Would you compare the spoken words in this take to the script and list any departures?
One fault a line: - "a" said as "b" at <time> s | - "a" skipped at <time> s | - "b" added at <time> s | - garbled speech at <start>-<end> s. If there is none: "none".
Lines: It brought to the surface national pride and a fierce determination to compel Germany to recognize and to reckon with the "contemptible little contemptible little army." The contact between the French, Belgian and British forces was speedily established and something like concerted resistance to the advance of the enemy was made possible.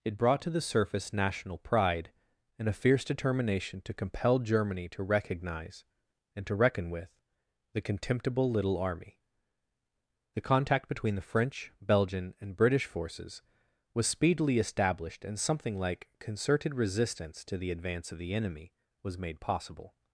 - "contemptible little" skipped at 8.8 s